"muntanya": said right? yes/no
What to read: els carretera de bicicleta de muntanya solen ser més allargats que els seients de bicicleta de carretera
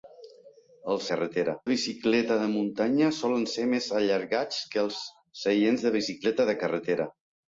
yes